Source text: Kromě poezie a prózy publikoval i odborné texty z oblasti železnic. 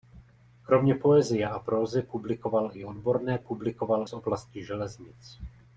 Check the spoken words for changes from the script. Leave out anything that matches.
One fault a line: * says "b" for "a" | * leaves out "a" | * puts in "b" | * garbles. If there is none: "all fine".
* says "publikoval" for "texty"